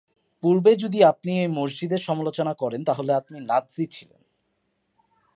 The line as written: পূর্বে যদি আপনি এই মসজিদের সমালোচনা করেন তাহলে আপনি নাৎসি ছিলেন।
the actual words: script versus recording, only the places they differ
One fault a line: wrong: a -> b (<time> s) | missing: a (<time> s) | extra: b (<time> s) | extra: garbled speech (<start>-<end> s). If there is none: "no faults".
no faults